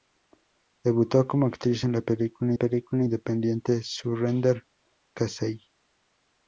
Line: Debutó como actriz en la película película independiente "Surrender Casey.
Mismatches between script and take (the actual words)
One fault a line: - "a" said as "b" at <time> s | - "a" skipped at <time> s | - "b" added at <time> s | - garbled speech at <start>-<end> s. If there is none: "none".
none